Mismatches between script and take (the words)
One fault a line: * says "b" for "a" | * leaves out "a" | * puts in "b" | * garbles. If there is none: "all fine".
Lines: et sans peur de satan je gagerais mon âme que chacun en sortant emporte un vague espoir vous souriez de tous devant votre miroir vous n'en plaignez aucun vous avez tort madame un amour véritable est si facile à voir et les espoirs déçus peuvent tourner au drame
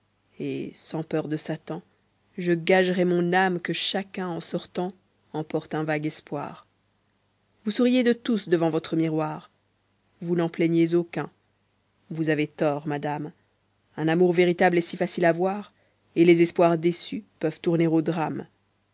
all fine